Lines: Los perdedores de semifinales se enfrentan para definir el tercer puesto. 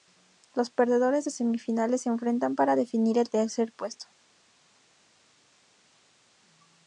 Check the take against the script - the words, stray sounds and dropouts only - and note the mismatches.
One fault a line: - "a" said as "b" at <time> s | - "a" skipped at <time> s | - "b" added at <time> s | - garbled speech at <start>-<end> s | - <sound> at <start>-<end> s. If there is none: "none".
none